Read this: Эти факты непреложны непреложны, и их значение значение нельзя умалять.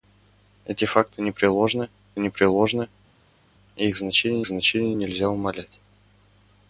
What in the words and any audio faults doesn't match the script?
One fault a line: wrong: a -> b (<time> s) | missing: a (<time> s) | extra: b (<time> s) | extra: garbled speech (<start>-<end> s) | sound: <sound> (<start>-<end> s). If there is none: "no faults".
no faults